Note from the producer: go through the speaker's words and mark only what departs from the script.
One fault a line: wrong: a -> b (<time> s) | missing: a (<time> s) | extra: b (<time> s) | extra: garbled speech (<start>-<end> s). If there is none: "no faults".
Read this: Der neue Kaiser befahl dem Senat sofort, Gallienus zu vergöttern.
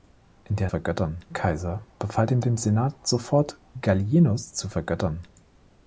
wrong: neue -> vergöttern (0.7 s)
extra: dem (2.4 s)